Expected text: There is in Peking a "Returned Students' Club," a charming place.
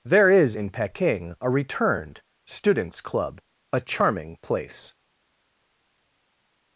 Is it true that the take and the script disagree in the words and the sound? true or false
false